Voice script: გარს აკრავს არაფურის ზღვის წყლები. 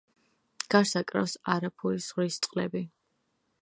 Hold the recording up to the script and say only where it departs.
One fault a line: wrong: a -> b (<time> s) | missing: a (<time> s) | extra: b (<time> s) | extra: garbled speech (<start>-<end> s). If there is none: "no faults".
no faults